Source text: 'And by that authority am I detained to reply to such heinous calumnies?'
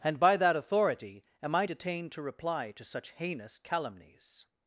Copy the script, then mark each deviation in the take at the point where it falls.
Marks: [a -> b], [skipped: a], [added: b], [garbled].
'And by that authority am I detained to reply to such heinous calumnies?'